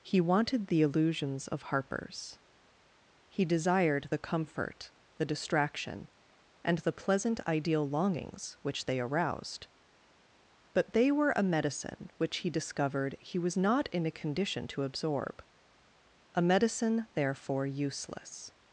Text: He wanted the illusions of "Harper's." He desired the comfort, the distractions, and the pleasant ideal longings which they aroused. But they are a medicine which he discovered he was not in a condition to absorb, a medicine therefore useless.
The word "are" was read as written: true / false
false